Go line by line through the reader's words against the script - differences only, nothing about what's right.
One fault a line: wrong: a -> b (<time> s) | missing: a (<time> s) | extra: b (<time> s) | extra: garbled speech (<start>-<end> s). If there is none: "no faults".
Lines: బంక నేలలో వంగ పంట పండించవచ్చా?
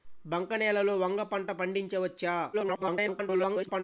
extra: garbled speech (2.5-3.8 s)